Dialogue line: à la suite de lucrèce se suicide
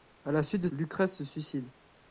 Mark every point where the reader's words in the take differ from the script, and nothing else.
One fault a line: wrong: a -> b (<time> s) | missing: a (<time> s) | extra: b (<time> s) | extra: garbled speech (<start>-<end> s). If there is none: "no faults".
no faults